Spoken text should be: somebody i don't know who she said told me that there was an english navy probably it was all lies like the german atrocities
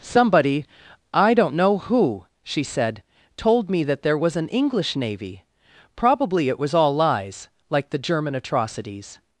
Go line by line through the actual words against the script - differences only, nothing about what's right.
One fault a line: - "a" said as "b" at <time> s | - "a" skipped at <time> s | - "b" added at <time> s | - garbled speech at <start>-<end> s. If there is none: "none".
none